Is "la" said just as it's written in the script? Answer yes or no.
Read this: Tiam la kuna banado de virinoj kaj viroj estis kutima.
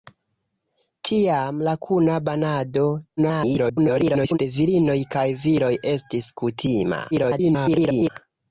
yes